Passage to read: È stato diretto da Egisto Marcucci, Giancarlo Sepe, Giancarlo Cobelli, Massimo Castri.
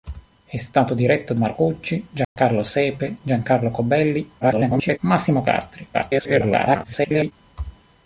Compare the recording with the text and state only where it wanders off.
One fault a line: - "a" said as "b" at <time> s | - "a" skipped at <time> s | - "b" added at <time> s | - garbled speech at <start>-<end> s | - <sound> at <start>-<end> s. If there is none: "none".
- "da Egisto" skipped at 1.4 s
- dropout at 2.2-2.4 s
- garbled speech at 4.4-5.0 s
- garbled speech at 5.9-7.3 s